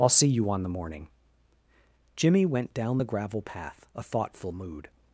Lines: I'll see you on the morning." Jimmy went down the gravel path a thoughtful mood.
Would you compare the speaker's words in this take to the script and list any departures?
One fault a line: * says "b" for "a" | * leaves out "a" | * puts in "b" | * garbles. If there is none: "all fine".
all fine